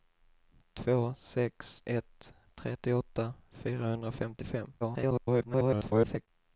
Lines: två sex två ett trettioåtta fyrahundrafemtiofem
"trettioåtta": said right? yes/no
yes